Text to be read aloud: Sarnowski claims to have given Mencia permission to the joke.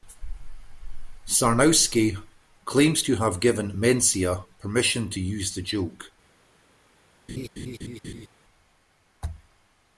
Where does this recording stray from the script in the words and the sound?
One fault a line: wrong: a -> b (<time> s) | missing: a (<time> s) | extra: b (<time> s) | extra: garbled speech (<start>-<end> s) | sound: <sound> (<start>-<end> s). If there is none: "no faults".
extra: use (5.2 s)
sound: laugh (7.3-8.3 s)